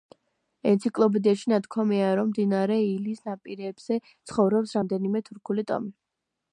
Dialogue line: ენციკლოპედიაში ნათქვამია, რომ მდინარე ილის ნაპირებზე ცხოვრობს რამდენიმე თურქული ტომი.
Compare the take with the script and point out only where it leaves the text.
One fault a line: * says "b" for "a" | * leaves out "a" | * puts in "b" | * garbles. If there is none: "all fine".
all fine